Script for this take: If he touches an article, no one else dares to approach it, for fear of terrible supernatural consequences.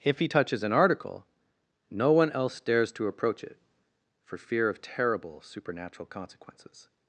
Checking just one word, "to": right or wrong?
right